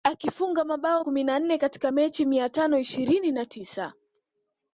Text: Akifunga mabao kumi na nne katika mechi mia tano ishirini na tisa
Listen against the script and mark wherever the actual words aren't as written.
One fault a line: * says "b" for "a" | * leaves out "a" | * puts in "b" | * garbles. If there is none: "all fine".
all fine